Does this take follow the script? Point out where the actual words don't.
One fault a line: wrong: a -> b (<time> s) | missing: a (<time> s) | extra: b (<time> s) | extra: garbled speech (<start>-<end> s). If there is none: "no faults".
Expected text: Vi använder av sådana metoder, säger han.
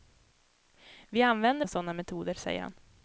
no faults